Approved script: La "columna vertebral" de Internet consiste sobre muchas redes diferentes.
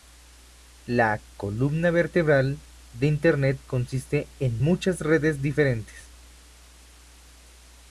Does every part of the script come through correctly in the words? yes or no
no